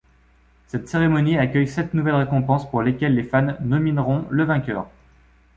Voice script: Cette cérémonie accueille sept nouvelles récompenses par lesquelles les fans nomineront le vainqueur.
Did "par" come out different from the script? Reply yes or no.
yes